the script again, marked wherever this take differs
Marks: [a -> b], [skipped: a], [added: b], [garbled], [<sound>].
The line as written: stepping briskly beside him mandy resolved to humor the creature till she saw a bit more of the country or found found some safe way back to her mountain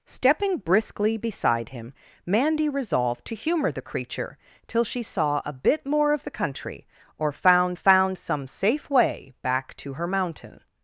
stepping briskly beside him mandy resolved to humor the creature till she saw a bit more of the country or found found some safe way back to her mountain